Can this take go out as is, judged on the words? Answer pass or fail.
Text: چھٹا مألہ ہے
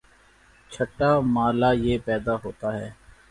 fail